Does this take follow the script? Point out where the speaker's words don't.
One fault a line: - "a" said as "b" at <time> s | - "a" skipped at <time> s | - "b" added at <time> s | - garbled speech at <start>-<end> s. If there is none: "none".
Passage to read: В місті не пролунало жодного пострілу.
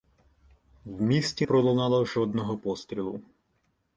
- "не" skipped at 1.5 s